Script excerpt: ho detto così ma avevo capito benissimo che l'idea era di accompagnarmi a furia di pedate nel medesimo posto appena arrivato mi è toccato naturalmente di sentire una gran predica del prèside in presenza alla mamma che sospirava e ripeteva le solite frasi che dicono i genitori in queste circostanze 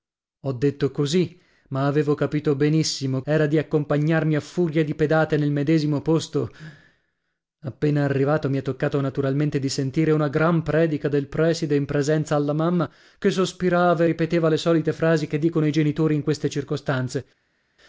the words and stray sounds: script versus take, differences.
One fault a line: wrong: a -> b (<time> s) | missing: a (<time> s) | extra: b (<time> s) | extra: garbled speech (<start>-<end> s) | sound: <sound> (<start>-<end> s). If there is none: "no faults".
missing: che l'idea (3.2 s)